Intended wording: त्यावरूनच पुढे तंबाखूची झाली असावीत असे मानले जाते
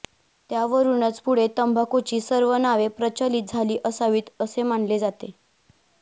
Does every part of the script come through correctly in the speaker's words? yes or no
no